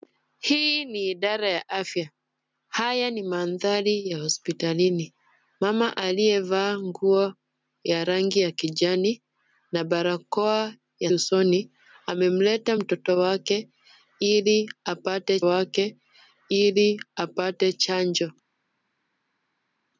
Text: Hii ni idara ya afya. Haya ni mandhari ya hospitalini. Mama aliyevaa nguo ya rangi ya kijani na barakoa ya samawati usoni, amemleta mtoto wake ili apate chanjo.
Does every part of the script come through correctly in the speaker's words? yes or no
no